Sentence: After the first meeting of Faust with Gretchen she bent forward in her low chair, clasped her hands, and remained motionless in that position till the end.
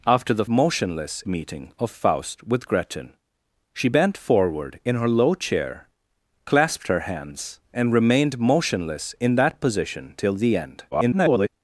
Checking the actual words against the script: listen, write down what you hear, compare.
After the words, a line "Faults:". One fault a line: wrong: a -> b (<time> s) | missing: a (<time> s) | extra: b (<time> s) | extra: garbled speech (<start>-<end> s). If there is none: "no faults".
After the motionless meeting of Faust with Gretchen she bent forward in her low chair, clasped her hands, and remained motionless in that position till the end. [garbled]
Faults:
wrong: first -> motionless (0.5 s)
extra: garbled speech (10.9-11.5 s)